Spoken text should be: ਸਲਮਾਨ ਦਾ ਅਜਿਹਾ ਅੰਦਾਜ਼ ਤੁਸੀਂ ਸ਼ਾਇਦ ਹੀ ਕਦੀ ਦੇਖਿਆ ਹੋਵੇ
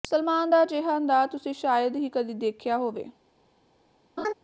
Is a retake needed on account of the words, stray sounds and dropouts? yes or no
yes